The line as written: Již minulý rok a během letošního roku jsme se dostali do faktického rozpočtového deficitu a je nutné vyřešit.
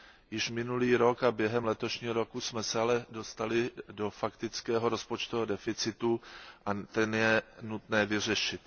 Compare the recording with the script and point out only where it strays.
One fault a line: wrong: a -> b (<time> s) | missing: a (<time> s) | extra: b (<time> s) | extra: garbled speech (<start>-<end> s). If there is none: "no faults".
extra: ale (2.8 s)
extra: ten (6.7 s)